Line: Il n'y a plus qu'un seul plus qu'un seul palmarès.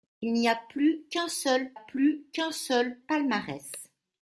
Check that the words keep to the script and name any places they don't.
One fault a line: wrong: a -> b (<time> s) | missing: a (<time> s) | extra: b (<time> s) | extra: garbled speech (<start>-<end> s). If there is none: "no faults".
no faults